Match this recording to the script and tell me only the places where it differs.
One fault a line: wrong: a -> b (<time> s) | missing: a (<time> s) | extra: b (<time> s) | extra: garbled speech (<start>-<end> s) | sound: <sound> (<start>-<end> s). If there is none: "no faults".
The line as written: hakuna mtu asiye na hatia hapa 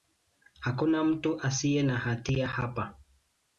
no faults